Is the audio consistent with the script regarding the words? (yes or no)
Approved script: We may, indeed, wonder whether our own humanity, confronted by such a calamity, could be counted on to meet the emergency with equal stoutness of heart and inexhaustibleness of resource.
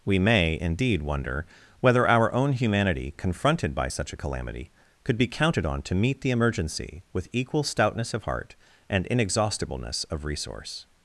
yes